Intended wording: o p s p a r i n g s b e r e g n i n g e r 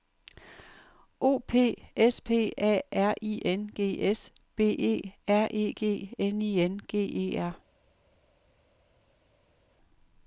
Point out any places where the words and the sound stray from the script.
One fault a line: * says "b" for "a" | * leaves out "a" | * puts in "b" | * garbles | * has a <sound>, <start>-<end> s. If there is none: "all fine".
all fine